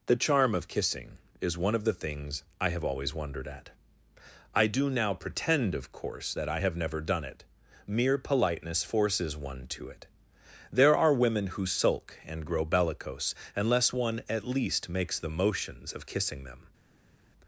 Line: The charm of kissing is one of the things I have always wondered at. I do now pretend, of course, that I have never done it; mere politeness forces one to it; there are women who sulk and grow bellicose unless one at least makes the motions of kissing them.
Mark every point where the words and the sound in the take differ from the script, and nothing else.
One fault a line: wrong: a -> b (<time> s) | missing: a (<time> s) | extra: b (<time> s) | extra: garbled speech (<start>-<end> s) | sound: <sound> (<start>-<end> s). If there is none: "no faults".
no faults